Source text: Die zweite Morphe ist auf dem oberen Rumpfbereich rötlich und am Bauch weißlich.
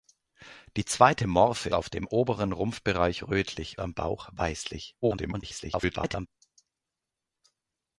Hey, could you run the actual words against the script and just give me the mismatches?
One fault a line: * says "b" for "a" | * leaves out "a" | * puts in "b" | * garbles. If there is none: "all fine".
* leaves out "ist"
* leaves out "und"
* garbles